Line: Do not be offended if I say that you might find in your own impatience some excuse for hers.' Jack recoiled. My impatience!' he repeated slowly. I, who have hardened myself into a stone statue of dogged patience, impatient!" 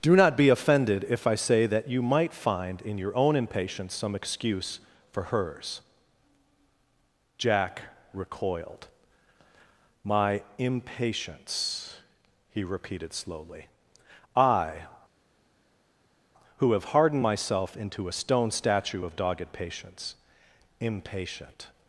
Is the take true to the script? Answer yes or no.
yes